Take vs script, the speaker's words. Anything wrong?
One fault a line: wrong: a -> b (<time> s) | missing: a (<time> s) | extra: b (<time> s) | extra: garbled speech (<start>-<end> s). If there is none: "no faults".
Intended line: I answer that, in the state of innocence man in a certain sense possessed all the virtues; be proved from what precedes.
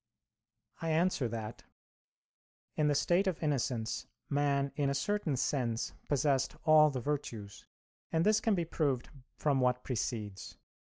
extra: and this can (8.1 s)